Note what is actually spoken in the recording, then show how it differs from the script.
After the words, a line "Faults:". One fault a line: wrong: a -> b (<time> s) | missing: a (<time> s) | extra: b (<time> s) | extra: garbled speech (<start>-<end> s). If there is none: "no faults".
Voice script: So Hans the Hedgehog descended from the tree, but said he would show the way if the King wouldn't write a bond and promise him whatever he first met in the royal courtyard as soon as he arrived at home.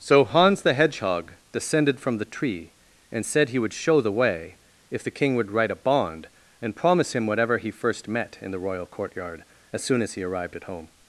So Hans the Hedgehog descended from the tree, and said he would show the way if the King would write a bond and promise him whatever he first met in the royal courtyard as soon as he arrived at home.
Faults:
wrong: but -> and (3.1 s)
wrong: wouldn't -> would (5.3 s)